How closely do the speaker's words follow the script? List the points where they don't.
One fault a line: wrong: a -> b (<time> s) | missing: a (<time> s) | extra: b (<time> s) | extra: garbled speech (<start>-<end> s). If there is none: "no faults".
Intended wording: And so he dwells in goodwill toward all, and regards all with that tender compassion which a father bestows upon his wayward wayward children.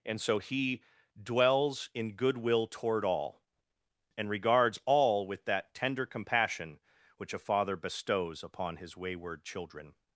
missing: wayward (9.4 s)